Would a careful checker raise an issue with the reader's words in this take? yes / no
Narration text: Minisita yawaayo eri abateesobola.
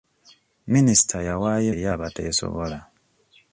no